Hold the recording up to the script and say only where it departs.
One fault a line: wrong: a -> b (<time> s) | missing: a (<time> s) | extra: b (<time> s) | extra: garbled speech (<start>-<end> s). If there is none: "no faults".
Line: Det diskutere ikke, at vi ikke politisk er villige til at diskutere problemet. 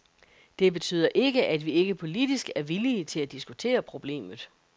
wrong: diskutere -> betyder (0.7 s)